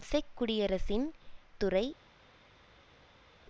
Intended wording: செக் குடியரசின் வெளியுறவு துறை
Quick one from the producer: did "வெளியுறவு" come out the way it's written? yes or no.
no